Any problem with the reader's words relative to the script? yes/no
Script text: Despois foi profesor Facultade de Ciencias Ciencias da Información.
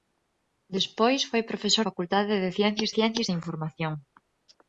no